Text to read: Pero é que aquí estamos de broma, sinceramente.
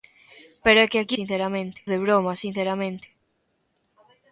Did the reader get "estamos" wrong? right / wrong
wrong